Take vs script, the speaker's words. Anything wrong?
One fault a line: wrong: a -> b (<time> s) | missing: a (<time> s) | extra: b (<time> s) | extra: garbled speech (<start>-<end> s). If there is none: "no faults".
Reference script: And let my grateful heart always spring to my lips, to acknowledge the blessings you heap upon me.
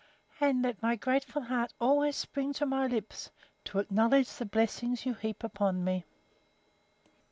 no faults